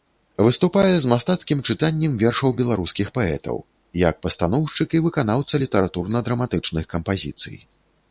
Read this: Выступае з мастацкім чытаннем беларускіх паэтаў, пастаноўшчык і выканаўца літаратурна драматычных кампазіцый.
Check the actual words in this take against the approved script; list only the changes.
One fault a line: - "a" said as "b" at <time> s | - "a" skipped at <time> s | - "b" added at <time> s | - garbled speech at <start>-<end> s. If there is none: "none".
- "вершаў" added at 2.2 s
- "як" added at 4.0 s